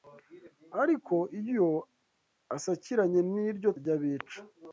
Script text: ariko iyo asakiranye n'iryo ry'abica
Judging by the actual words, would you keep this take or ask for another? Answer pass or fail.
pass